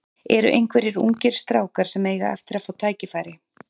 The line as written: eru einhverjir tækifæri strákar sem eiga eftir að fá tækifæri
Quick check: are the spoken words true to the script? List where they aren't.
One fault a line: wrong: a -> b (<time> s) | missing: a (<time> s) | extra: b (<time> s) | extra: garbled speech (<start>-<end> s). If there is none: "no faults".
wrong: tækifæri -> ungir (1.0 s)